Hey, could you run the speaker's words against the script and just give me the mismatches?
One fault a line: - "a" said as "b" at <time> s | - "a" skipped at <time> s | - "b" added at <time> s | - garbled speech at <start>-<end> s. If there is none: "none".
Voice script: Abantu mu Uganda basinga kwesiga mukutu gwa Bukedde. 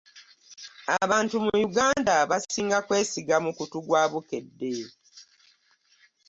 none